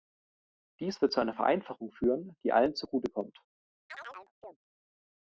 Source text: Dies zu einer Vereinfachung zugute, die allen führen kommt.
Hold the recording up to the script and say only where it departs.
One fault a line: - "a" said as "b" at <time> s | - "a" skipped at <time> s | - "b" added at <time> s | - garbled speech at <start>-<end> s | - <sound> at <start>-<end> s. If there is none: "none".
- "wird" added at 1.0 s
- "zugute" said as "führen" at 1.9 s
- "führen" said as "zugute" at 2.7 s
- chirp at 3.9-4.6 s